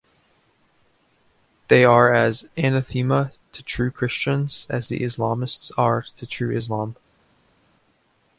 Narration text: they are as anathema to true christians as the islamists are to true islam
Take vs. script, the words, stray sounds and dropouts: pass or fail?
pass